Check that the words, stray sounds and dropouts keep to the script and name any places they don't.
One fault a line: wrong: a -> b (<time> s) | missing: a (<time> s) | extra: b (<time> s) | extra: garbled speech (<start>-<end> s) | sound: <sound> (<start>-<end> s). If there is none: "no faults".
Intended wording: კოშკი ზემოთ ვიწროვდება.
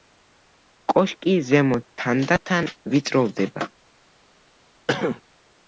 extra: თანდათან (2.0 s)
sound: cough (4.9-5.2 s)